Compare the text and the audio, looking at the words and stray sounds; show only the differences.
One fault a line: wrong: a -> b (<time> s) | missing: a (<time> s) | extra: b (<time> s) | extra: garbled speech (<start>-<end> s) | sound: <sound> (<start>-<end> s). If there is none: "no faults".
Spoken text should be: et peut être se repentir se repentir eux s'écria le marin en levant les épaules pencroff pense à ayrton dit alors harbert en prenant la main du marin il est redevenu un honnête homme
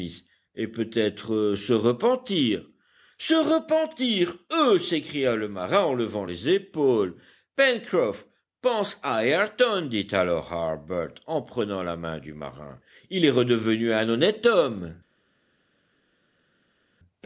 no faults